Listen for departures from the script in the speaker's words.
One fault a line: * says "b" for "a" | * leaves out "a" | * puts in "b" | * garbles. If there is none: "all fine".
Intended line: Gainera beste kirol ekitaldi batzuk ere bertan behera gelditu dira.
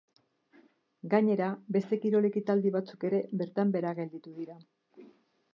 all fine